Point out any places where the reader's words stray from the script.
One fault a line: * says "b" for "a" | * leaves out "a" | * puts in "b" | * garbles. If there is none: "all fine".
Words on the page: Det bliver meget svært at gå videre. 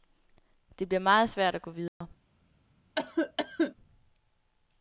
all fine